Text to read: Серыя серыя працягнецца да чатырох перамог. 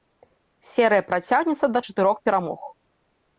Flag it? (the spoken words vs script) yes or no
yes